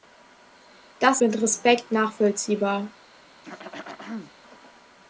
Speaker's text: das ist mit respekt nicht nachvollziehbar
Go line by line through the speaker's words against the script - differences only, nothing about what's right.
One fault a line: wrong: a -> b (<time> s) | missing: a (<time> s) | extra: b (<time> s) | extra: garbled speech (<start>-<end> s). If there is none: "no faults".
missing: ist (1.2 s)
missing: nicht (1.9 s)